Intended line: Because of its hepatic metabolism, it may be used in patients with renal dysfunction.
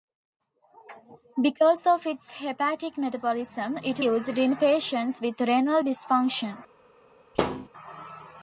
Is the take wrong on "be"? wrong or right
wrong